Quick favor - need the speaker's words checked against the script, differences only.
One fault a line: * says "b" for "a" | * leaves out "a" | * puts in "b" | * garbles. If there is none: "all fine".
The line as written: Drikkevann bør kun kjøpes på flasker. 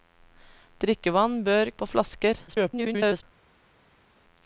* leaves out "kun kjøpes"
* garbles